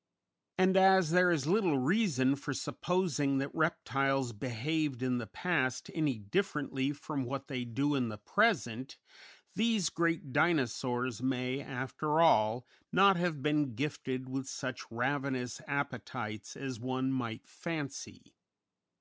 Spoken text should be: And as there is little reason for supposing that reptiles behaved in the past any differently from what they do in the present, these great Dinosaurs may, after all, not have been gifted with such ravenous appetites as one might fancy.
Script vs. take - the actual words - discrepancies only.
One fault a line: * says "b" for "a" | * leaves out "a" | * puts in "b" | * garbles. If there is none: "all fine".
all fine